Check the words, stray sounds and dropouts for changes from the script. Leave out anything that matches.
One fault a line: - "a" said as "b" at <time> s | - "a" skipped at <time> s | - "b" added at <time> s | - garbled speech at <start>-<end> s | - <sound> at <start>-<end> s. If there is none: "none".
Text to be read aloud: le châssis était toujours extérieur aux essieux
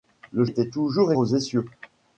- "châssis" skipped at 0.5 s
- "extérieur" skipped at 1.1 s